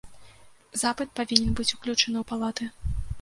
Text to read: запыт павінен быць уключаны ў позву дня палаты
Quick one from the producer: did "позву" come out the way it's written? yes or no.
no